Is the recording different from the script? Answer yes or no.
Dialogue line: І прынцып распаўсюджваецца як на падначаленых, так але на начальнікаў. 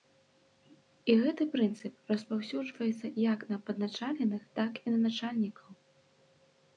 yes